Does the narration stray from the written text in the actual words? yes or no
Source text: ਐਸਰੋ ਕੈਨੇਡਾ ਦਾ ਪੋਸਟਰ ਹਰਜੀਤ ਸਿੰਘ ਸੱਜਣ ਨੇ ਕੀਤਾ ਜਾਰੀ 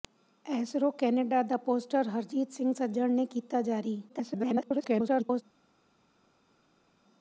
yes